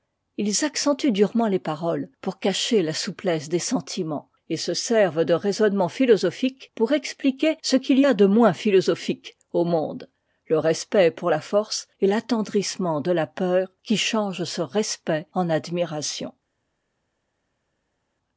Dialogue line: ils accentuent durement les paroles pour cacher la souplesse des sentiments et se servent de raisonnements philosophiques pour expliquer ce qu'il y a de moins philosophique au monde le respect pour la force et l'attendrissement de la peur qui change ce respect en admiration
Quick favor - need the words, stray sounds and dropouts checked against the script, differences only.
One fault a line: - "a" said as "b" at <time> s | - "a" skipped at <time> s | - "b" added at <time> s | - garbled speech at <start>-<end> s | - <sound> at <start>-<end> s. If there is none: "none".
none